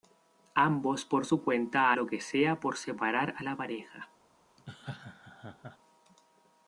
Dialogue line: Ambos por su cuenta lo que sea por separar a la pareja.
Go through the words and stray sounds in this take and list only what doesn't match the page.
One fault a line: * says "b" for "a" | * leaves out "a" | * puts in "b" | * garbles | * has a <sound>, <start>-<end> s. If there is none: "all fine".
* has a laugh, 4.6-5.8 s